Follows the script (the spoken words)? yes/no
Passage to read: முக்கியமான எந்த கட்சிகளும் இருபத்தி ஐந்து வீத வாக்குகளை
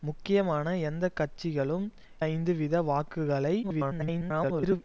no